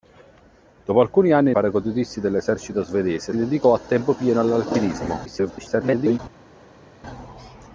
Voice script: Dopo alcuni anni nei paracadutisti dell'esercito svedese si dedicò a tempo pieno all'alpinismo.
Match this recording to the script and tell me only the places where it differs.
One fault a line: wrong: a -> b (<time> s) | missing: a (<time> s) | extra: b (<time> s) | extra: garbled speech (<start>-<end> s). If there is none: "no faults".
missing: nei (1.5 s)
missing: si (3.3 s)
extra: garbled speech (5.2-6.2 s)